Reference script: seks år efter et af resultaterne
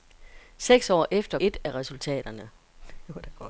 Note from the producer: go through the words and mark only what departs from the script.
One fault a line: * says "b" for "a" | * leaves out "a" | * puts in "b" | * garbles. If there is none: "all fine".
all fine